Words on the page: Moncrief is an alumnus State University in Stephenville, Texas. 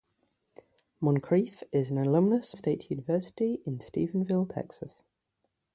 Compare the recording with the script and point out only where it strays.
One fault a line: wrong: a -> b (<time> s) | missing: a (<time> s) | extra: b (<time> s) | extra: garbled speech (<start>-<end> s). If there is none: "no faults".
no faults